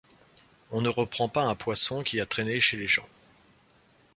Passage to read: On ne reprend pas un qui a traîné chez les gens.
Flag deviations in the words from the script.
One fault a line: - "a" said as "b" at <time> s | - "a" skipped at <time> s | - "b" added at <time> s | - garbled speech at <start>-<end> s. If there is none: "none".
- "poisson" added at 1.6 s